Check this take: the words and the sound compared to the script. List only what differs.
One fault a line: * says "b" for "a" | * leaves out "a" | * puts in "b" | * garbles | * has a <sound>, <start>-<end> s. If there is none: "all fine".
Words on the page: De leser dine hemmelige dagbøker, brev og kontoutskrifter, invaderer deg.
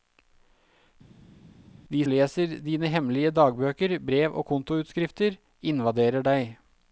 all fine